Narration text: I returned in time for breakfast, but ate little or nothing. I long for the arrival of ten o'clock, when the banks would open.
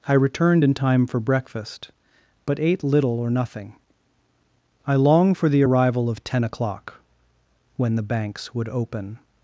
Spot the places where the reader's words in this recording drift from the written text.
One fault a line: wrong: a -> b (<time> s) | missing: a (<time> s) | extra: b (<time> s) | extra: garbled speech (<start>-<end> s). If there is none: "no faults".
no faults